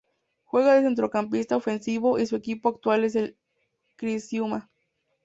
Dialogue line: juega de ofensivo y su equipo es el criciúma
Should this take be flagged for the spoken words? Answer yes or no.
yes